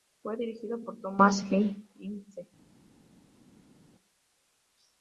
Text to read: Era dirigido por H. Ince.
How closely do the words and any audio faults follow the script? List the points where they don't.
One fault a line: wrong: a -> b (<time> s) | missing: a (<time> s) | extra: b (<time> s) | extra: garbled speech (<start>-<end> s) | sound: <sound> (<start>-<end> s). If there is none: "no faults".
wrong: Era -> Fue (0.2 s)
extra: Thomas (1.0 s)